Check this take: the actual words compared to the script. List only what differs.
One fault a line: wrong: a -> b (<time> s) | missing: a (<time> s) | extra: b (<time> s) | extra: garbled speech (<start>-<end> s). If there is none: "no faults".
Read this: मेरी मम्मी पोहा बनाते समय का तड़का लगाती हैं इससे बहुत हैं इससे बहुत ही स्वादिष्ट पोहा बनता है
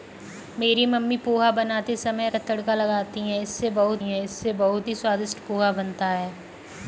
no faults